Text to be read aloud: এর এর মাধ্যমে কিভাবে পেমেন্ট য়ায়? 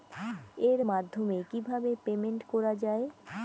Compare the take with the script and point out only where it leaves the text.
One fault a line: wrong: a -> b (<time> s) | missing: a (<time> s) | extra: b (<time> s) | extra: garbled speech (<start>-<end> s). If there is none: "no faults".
missing: এর (0.8 s)
extra: করা (2.5 s)